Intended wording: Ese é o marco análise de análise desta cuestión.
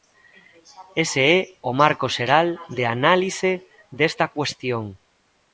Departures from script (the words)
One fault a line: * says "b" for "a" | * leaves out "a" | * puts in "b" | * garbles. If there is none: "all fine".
* says "xeral" for "análise"